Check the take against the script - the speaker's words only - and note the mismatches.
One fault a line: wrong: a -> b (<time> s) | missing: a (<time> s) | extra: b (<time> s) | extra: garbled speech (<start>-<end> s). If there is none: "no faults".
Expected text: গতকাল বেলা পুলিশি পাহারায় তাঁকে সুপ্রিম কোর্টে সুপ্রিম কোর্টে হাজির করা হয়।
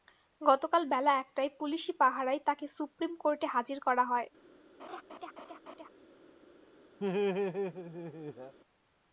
extra: একটায় (1.2 s)
missing: সুপ্রিম কোর্টে (3.5 s)